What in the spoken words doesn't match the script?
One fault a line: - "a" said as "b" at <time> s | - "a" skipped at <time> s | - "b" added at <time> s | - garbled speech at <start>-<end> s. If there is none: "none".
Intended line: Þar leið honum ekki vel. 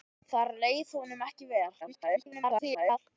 - garbled speech at 1.8-3.0 s